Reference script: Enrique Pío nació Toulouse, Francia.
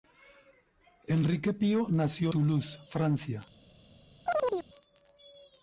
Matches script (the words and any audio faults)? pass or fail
fail